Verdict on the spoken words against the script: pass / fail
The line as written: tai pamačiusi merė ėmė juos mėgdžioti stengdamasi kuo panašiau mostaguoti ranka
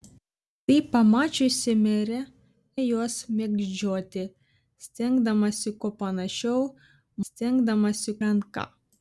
fail